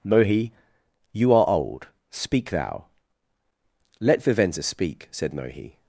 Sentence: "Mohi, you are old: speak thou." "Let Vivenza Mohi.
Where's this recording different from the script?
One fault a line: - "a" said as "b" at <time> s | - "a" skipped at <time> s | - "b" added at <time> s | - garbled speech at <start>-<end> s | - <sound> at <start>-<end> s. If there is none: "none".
- "speak said" added at 4.6 s